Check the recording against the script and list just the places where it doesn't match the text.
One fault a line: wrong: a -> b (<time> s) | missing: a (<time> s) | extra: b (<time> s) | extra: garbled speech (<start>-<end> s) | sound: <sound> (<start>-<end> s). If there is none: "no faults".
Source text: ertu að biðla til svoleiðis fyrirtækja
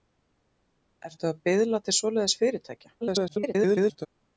extra: garbled speech (3.0-4.1 s)